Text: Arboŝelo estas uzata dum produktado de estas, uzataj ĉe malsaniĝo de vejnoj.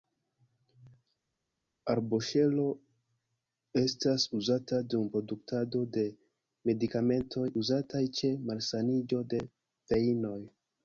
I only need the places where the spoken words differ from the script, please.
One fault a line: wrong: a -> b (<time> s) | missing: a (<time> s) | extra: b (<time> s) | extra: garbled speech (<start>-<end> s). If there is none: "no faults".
wrong: estas -> medikamentoj (6.7 s)